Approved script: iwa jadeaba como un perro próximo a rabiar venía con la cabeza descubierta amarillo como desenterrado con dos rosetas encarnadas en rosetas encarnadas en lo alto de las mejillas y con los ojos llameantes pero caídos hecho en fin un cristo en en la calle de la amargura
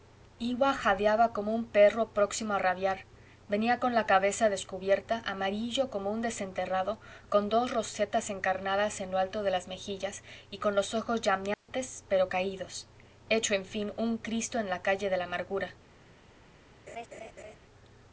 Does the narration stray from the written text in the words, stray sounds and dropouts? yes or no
yes